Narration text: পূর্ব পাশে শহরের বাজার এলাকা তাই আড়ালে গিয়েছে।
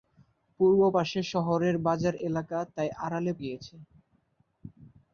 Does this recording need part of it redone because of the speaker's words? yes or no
no